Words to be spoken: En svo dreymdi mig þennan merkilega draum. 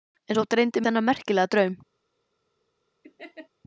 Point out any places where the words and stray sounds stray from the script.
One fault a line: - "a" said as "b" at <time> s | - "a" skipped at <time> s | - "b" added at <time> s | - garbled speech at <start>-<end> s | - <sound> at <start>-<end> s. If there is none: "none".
- "mig" skipped at 0.8 s
- laugh at 3.0-3.5 s